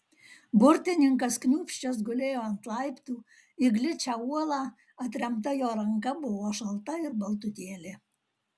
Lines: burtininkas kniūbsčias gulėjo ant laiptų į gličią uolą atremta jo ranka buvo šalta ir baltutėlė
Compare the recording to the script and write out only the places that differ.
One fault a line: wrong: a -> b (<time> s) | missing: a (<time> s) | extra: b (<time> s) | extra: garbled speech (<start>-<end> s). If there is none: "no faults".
no faults